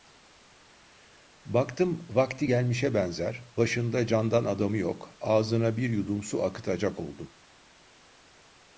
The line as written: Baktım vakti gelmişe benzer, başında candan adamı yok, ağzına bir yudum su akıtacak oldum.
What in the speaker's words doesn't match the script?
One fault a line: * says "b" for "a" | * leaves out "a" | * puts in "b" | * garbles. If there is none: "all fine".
all fine